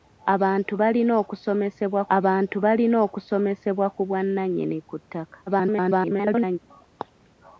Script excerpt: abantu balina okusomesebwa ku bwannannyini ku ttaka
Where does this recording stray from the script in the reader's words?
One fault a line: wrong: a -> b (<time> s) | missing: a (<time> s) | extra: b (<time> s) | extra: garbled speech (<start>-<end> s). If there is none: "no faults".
extra: abantu balina okusomesebwa (2.2 s)
extra: garbled speech (5.5-6.6 s)